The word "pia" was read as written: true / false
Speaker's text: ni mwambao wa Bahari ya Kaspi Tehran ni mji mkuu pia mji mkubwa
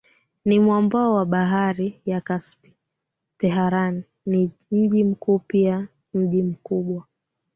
true